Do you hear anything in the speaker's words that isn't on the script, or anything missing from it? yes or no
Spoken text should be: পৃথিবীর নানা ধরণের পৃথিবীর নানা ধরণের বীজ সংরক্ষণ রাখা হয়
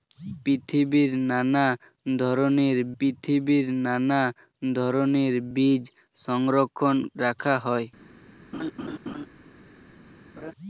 no